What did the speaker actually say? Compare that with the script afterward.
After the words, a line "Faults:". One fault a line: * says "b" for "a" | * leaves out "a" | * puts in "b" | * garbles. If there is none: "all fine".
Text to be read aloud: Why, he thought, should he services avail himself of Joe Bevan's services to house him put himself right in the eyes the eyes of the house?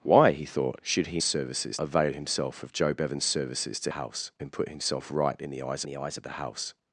Why, he thought, should he services avail himself of Joe Bevan's services to house him put himself right in the eyes the eyes of the house?
Faults:
all fine